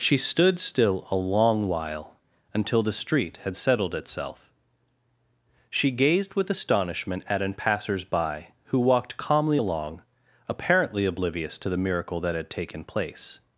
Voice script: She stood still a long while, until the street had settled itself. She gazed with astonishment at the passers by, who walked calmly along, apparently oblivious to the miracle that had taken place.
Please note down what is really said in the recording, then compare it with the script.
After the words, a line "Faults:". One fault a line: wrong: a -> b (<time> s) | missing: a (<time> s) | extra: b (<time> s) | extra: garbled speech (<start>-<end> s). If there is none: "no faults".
She stood still a long while, until the street had settled itself. She gazed with astonishment at an passers by, who walked calmly along, apparently oblivious to the miracle that had taken place.
Faults:
wrong: the -> an (7.4 s)